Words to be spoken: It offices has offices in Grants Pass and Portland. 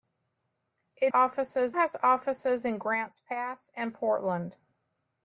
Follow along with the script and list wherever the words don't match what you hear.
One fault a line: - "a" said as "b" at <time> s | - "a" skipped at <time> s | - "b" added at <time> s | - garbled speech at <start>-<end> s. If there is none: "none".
none